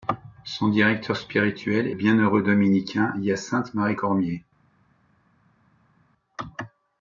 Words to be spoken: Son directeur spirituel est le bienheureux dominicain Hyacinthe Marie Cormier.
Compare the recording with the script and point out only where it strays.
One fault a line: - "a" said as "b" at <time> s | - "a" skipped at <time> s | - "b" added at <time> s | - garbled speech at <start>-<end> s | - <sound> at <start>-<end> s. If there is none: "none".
- "le" skipped at 1.9 s